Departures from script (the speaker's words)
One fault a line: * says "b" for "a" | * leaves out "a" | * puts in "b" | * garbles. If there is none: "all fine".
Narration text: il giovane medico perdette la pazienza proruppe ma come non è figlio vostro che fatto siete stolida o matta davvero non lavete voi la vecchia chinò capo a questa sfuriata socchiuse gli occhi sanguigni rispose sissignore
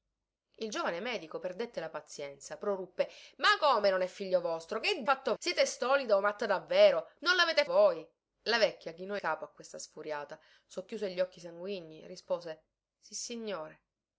all fine